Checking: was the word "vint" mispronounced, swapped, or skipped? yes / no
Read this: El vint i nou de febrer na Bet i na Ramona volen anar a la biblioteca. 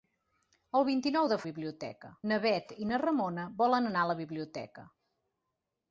no